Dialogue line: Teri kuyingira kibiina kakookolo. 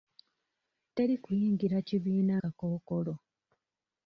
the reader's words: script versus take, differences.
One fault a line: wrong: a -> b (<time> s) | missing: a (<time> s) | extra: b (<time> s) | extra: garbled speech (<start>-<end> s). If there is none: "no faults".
no faults